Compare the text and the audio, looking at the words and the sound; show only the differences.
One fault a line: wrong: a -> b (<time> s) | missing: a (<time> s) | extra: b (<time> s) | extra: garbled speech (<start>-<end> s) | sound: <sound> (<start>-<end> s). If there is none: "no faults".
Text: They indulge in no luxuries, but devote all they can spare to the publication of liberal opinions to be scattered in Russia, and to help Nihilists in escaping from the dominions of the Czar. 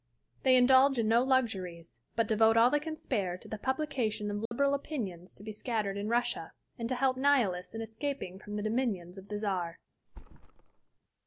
sound: dropout (4.5-4.5 s)
sound: thud (10.1-11.0 s)